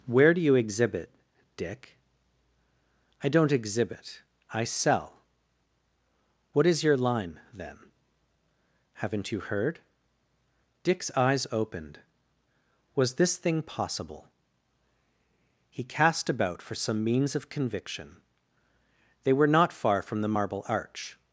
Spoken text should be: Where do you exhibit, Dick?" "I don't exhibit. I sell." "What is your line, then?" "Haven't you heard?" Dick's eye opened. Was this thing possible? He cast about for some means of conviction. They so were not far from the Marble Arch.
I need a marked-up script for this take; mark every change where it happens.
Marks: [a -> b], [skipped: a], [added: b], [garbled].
Where do you exhibit, Dick?" "I don't exhibit. I sell." "What is your line, then?" "Haven't you heard?" Dick's [eye -> eyes] opened. Was this thing possible? He cast about for some means of conviction. They [skipped: so] were not far from the Marble Arch.